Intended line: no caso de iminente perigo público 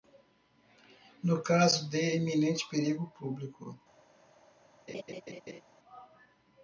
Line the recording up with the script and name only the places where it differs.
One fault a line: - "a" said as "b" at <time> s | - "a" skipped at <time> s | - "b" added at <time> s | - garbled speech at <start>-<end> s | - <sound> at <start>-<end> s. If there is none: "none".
- laugh at 4.9-5.6 s